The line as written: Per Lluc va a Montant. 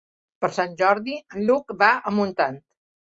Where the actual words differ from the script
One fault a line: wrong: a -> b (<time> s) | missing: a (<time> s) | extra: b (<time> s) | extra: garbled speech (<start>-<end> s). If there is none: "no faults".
extra: Sant Jordi en (0.6 s)